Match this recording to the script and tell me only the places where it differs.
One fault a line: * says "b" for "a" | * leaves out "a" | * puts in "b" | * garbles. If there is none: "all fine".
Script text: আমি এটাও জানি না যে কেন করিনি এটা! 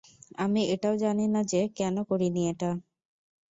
all fine